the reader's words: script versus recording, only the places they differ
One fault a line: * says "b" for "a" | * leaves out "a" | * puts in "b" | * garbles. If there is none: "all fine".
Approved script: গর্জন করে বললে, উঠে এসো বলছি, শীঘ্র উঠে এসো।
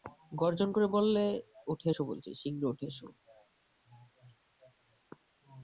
all fine